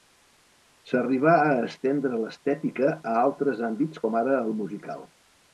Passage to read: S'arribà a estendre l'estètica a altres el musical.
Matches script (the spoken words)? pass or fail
fail